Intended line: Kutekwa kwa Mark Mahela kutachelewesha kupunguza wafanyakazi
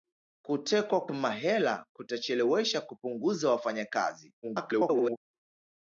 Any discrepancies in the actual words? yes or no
yes